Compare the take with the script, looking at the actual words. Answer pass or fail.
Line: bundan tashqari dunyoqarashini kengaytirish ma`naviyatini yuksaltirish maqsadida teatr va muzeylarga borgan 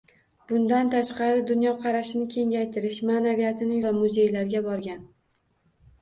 fail